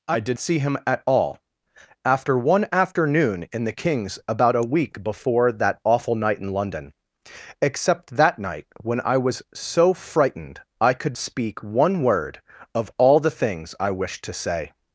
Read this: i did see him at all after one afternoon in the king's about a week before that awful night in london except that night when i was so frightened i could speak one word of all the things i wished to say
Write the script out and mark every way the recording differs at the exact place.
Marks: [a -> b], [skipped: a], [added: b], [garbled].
i did see him at all after one afternoon in the king's about a week before that awful night in london except that night when i was so frightened i could speak one word of all the things i wished to say